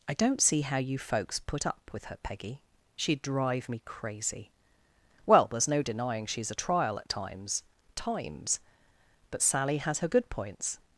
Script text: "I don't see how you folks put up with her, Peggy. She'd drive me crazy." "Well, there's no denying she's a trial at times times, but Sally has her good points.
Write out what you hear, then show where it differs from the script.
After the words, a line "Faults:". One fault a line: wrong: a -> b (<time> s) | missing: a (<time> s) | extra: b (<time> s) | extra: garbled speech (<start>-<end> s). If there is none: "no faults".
"I don't see how you folks put up with her, Peggy. She'd drive me crazy." "Well, there's no denying she's a trial at times times, but Sally has her good points.
Faults:
no faults